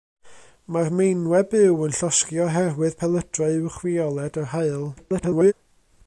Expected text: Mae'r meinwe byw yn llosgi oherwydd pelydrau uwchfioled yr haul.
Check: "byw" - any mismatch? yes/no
no